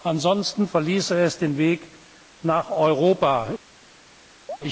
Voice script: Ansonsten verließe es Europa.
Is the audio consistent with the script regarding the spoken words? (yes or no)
no